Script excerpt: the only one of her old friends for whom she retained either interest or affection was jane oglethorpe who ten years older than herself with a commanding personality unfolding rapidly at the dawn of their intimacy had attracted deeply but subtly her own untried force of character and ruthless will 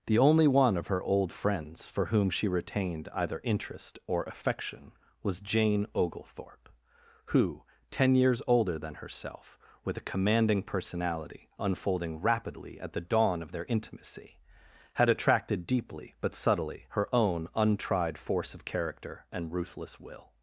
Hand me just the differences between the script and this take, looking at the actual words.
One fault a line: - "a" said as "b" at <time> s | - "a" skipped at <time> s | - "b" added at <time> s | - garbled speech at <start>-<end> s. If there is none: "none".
none